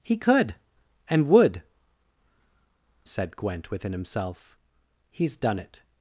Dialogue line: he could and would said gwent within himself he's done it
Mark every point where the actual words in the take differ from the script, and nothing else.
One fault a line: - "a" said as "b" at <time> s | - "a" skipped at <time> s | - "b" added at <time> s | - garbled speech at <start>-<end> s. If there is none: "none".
none